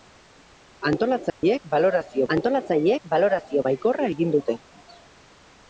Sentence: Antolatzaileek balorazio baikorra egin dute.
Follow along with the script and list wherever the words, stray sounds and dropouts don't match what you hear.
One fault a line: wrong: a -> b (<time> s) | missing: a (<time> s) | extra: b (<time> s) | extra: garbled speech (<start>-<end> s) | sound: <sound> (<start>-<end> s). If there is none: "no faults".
sound: dropout (1.3-1.4 s)
extra: antolatzaileek balorazio (2.4 s)